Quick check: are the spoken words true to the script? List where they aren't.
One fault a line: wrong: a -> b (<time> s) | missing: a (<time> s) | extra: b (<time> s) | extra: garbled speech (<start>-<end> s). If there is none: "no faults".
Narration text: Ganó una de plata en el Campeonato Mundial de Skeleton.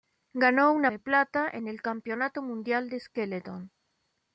no faults